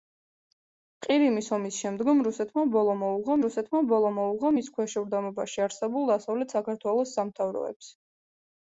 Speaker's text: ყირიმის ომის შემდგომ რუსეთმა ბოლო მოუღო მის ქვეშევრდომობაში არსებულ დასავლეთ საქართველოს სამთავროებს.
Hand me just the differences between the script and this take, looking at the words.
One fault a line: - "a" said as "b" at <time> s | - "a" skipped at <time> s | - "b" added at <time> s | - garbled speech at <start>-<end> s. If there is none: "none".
- "რუსეთმა ბოლო მოუღო" added at 3.4 s